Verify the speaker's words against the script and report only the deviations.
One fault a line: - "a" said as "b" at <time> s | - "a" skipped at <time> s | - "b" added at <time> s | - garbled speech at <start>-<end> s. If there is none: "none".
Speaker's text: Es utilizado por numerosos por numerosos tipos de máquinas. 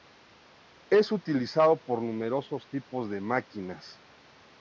- "por numerosos" skipped at 2.7 s